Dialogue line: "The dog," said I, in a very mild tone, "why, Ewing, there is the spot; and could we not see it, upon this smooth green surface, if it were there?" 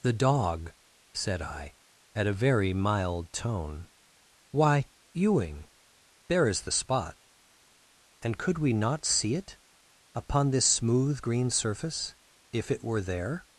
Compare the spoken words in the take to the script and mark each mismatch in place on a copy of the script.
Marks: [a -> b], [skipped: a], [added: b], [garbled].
"The dog," said I, [in -> at] a very mild tone, "why, Ewing, there is the spot; and could we not see it, upon this smooth green surface, if it were there?"